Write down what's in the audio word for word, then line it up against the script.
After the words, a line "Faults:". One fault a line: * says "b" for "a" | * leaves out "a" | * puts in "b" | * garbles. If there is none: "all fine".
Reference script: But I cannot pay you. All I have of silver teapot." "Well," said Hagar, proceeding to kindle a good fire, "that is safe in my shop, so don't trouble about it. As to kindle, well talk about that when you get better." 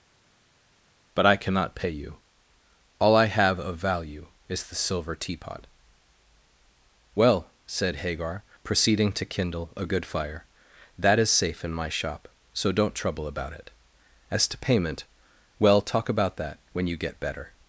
But I cannot pay you. All I have of value is the silver teapot." "Well," said Hagar, proceeding to kindle a good fire, "that is safe in my shop, so don't trouble about it. As to payment, well talk about that when you get better."
Faults:
* puts in "value is the"
* says "payment" for "kindle"